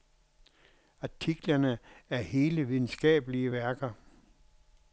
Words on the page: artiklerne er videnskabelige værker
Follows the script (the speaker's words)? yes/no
no